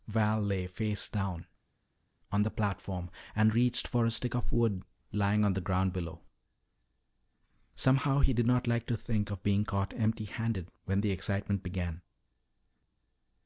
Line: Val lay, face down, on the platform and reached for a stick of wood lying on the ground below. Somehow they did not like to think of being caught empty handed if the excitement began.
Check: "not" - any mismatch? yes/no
no